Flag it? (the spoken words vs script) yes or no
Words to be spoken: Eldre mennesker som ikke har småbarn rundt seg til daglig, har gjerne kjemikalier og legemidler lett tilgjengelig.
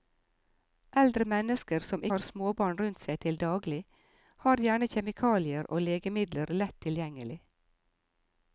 yes